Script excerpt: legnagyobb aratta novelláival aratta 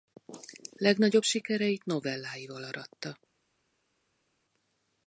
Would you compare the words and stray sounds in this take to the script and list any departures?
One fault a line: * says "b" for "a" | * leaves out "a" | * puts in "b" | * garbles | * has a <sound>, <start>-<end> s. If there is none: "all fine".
* says "sikereit" for "aratta"